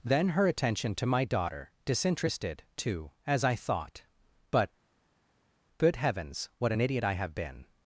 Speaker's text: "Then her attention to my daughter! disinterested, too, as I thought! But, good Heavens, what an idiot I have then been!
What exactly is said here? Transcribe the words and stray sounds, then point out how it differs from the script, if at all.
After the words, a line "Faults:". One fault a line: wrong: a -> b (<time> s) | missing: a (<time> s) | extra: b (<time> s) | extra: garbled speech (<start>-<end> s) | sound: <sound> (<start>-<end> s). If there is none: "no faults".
"Then her attention to my daughter! disinterested, too, as I thought! But, good Heavens, what an idiot I have been!
Faults:
missing: then (7.3 s)